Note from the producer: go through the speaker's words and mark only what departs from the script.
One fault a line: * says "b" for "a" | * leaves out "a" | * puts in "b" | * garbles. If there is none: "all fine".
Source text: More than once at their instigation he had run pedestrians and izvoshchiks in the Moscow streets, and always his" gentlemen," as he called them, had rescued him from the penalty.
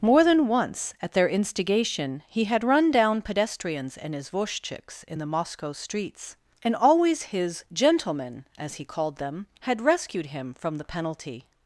* puts in "down"